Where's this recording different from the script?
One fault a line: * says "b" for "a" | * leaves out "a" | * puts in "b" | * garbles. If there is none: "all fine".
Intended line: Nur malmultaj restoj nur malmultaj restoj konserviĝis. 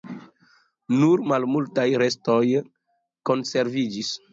* leaves out "nur malmultaj restoj"